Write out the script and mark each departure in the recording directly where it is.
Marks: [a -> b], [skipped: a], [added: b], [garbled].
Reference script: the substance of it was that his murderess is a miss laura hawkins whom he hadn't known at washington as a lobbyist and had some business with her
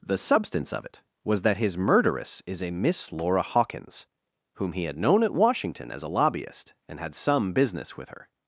the substance of it was that his murderess is a miss laura hawkins whom he [hadn't -> had] known at washington as a lobbyist and had some business with her